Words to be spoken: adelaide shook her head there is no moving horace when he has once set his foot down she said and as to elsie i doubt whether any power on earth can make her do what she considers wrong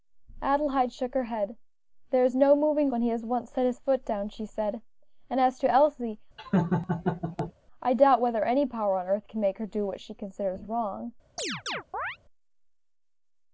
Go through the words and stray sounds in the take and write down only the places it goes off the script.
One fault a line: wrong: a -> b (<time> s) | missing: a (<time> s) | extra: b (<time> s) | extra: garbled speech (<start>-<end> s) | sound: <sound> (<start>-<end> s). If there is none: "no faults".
missing: horace (2.9 s)
sound: laugh (6.4-7.5 s)
sound: chirp (11.4-12.2 s)